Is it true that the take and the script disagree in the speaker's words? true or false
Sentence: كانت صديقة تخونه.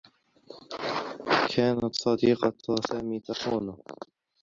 true